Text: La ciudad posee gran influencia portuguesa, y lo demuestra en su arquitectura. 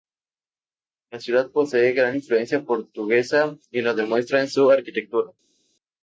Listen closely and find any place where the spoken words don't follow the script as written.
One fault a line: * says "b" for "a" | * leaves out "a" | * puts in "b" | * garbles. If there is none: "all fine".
all fine